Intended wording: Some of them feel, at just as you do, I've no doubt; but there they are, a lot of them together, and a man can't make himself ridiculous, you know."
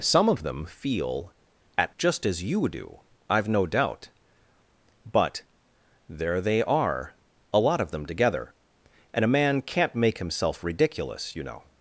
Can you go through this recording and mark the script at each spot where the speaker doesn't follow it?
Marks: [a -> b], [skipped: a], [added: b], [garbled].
Some of them feel, at just as you do, I've no doubt; but there they are, a lot of them together, and a man can't make himself ridiculous, you know."